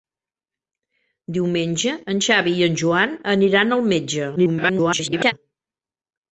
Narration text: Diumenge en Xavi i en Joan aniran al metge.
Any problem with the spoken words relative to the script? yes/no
yes